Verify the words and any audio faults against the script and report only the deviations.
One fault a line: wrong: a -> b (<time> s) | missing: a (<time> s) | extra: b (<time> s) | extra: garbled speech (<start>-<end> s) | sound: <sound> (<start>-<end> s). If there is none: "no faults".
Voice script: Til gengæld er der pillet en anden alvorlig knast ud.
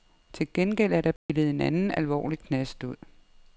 sound: dropout (1.2-1.3 s)